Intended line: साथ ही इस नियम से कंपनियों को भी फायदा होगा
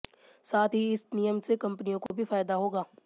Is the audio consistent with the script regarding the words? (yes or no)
yes